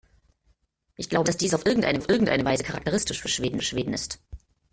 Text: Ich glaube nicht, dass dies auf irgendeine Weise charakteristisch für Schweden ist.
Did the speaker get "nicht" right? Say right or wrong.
wrong